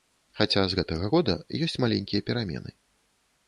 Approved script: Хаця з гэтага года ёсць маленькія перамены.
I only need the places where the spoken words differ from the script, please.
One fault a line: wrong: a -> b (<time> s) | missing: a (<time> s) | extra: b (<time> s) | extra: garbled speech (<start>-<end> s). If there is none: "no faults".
no faults